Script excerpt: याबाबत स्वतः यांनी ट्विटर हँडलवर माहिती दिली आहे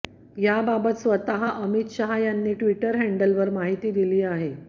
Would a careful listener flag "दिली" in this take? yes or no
no